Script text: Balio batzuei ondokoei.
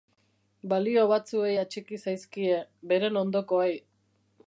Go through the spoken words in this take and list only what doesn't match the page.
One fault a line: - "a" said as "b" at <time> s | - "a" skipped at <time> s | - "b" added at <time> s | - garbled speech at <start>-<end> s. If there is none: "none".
- "atxiki zaizkie beren" added at 1.6 s